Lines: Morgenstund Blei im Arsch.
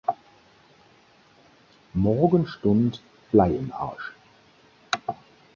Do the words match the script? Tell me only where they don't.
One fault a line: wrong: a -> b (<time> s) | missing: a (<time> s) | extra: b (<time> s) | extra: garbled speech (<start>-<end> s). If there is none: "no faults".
no faults